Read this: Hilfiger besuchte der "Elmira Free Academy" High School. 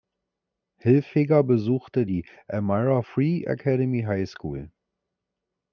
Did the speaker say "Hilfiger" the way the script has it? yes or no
yes